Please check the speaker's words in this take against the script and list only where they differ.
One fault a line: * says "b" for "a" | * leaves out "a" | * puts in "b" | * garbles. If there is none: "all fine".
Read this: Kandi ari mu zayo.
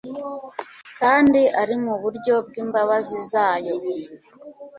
* puts in "buryo bw'imbabazi"